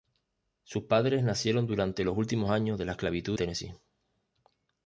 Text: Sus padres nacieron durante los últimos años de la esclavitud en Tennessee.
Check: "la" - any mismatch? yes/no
no